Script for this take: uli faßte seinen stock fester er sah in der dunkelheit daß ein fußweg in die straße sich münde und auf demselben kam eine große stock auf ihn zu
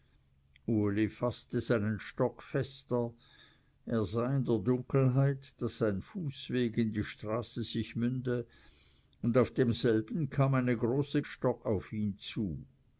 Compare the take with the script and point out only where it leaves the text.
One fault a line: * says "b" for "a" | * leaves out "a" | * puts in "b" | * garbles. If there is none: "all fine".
all fine